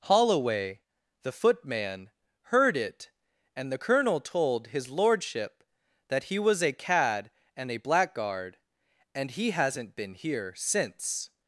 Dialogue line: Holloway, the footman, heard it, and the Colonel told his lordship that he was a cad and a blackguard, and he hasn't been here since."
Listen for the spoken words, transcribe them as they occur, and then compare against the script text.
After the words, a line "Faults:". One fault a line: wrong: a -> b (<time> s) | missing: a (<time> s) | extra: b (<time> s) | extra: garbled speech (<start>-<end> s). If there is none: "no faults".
Holloway, the footman, heard it, and the Colonel told his lordship that he was a cad and a blackguard, and he hasn't been here since."
Faults:
no faults